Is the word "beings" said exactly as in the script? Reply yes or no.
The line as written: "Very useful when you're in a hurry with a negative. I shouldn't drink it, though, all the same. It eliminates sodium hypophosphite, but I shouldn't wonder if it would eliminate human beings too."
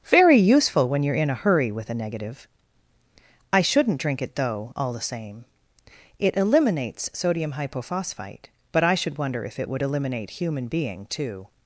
no